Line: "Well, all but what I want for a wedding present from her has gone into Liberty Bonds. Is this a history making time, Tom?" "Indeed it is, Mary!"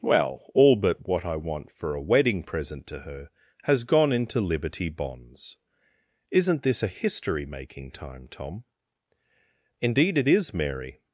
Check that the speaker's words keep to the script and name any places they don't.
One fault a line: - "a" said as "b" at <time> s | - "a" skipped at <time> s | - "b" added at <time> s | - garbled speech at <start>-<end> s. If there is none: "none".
- "from" said as "to" at 2.9 s
- "Is" said as "Isn't" at 6.3 s